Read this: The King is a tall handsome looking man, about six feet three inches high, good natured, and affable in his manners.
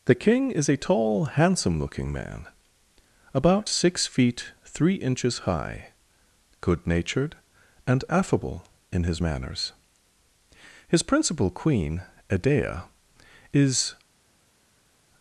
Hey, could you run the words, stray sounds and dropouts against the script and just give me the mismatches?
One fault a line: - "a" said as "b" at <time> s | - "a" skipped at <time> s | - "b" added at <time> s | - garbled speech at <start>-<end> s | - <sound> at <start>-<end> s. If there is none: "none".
- "His principal queen Edea is" added at 10.9 s